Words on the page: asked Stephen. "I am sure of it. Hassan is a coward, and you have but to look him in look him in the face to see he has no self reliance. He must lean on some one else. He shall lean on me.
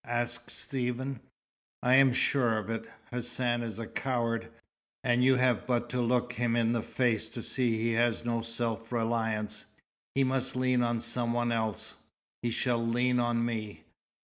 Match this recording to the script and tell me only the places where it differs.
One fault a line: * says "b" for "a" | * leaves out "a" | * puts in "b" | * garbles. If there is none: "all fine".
* leaves out "look him in"